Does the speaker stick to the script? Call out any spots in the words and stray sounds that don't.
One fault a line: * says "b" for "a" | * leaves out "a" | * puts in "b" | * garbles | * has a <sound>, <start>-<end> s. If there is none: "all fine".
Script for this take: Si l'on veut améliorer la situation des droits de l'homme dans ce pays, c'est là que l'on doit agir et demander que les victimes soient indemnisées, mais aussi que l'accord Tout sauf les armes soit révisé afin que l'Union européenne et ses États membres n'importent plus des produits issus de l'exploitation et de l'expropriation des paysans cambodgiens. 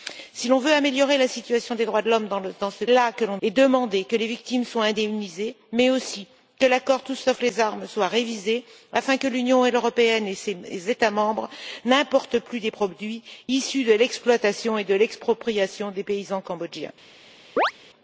* leaves out "pays c'est"
* leaves out "doit agir"
* has a chirp, 17.6-17.7 s